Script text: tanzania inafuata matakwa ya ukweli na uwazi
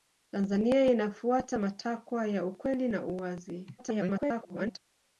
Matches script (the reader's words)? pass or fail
fail